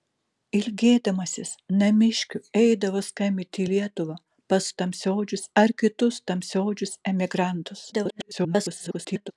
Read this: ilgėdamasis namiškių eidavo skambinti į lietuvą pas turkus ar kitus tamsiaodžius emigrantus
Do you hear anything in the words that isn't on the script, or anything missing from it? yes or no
yes